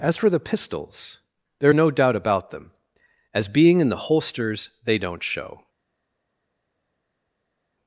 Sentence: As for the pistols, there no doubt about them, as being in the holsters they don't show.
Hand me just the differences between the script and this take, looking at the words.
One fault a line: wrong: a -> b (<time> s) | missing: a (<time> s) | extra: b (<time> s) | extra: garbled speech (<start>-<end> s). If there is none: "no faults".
no faults